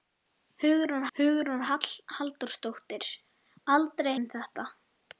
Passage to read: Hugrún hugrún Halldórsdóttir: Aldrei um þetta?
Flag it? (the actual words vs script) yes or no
no